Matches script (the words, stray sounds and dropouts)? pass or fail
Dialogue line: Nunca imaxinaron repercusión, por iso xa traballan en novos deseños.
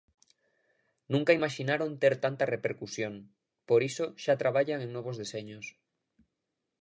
fail